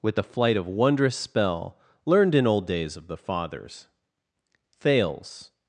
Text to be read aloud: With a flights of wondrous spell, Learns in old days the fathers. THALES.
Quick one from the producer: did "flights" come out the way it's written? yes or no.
no